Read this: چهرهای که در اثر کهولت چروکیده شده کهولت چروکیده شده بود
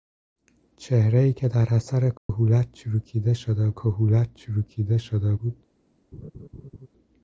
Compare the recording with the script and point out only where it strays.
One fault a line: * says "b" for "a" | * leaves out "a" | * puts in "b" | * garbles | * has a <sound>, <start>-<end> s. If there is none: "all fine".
* has a dropout, 2.2-2.3 s
* has a laugh, 6.1-6.9 s